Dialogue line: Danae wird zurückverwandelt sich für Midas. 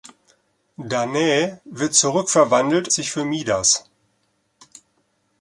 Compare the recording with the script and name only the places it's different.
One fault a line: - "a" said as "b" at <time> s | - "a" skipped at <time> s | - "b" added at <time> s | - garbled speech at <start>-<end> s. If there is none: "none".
none